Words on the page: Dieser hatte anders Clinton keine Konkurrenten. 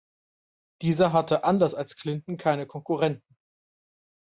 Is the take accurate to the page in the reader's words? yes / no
no